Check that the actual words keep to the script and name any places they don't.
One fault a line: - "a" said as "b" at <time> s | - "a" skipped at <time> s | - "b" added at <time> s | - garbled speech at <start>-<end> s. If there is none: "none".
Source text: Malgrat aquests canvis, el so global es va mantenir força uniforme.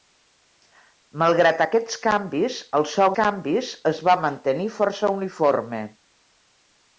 - "global" said as "canvis" at 3.2 s